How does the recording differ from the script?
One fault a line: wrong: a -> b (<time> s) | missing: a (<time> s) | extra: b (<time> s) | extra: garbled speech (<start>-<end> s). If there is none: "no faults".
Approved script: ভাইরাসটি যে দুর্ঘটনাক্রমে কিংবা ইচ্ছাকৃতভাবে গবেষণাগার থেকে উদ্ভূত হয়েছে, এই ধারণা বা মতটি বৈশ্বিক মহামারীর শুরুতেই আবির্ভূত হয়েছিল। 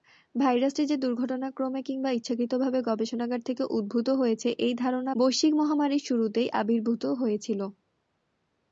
missing: বা মতটি (5.1 s)